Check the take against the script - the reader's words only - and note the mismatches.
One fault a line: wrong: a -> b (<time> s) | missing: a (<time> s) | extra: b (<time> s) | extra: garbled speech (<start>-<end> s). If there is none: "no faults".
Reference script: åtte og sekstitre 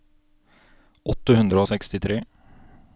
extra: hundre (1.4 s)